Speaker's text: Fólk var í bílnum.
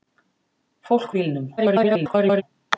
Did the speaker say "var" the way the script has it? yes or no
no